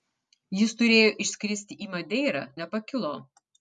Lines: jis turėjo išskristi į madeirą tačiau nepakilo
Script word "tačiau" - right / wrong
wrong